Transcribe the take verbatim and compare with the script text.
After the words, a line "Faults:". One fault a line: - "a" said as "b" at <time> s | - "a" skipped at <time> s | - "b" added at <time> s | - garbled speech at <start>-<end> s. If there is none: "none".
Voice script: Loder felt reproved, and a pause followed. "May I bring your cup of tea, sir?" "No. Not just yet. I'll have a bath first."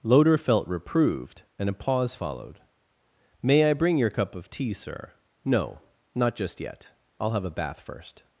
Loder felt reproved, and a pause followed. "May I bring your cup of tea, sir?" "No. Not just yet. I'll have a bath first."
Faults:
none